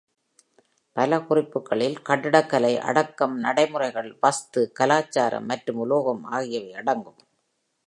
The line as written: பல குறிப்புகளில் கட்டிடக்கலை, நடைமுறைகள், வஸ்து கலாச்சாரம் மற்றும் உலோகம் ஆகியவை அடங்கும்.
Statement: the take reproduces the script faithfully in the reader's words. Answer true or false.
false